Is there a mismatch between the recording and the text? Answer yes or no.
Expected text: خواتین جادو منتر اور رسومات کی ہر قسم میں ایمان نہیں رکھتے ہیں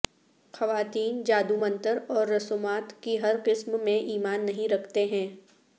no